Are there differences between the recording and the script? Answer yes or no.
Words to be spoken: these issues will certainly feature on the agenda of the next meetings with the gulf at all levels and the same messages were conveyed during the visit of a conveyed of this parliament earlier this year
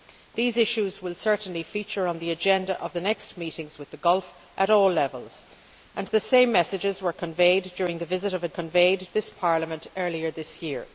no